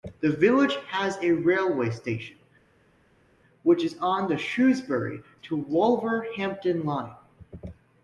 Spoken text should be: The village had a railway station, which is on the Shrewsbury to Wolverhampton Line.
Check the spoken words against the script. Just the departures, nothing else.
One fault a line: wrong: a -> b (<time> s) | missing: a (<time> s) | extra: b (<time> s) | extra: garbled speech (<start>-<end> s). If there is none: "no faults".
wrong: had -> has (0.9 s)